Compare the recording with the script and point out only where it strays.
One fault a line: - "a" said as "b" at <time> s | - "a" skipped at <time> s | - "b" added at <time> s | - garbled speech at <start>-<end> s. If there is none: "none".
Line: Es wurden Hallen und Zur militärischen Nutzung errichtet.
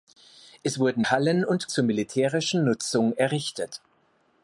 none